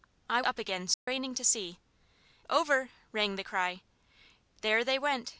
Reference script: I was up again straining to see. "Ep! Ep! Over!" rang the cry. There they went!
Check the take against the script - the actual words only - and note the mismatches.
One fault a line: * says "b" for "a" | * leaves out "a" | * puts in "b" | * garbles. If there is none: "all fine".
* leaves out "was"
* leaves out "Ep Ep"